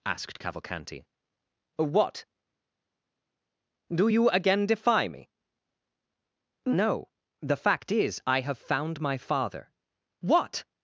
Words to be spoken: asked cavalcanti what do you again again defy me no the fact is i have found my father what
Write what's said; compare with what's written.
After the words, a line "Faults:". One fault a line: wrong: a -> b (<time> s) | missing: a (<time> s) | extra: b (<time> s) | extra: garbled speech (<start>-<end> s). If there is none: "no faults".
asked cavalcanti what do you again defy me no the fact is i have found my father what
Faults:
missing: again (4.7 s)